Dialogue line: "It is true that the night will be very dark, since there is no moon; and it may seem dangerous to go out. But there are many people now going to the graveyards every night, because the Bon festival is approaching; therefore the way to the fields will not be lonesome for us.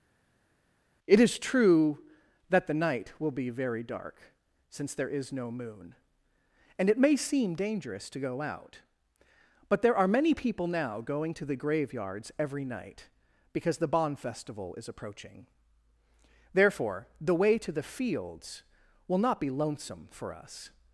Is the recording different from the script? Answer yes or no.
no